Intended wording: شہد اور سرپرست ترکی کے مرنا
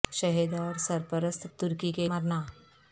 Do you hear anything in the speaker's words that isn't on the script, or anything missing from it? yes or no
no